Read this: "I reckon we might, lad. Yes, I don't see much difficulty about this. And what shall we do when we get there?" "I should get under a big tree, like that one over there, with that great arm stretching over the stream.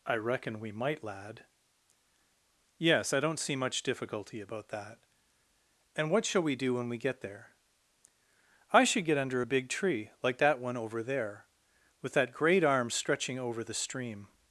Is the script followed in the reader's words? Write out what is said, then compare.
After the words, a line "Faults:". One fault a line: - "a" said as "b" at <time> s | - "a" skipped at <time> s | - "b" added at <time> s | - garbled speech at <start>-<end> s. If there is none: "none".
"I reckon we might, lad. Yes, I don't see much difficulty about that. And what shall we do when we get there?" "I should get under a big tree, like that one over there, with that great arm stretching over the stream.
Faults:
- "this" said as "that" at 4.7 s